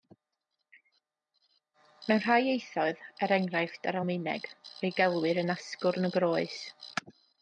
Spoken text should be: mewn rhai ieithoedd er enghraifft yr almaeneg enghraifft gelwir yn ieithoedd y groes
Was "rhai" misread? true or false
false